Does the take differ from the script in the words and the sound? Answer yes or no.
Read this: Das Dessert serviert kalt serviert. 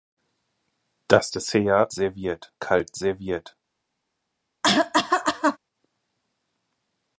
yes